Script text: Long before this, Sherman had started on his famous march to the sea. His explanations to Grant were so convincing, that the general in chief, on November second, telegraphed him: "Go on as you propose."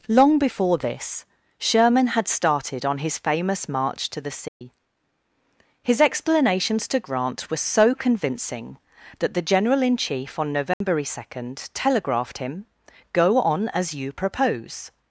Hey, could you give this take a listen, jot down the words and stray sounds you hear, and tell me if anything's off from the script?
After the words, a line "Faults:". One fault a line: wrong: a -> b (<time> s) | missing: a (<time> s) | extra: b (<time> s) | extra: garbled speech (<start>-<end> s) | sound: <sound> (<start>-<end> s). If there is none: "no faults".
Long before this, Sherman had started on his famous march to the sea. His explanations to Grant were so convincing, that the general in chief, on November second, telegraphed him: "Go on as you propose."
Faults:
sound: dropout (4.5-4.6 s)
sound: dropout (10.7-10.8 s)